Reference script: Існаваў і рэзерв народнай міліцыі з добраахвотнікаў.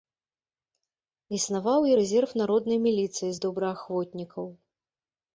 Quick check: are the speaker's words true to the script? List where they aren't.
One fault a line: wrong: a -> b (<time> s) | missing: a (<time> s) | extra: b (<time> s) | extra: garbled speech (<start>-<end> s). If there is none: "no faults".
no faults